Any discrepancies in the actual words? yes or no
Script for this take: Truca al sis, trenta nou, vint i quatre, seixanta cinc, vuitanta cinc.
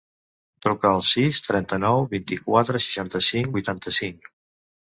no